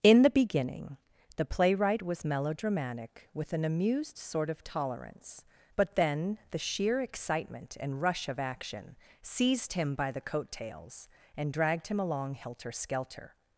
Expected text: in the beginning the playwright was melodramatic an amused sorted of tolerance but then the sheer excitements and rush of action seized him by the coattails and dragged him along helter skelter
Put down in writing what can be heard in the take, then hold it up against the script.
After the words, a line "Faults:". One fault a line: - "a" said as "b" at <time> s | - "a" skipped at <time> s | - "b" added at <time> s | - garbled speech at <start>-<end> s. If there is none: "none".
in the beginning the playwright was melodramatic with an amused sort of tolerance but then the sheer excitement and rush of action seized him by the coattails and dragged him along helter skelter
Faults:
- "with" added at 3.4 s
- "sorted" said as "sort" at 4.2 s
- "excitements" said as "excitement" at 7.0 s